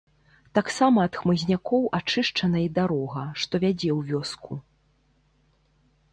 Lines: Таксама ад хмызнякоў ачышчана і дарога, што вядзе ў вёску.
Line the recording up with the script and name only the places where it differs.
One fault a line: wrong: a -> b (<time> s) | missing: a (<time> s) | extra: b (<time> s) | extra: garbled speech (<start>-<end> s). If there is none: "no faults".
no faults